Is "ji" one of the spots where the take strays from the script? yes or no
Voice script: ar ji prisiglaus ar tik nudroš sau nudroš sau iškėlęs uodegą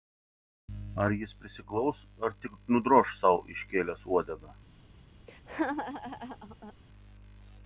yes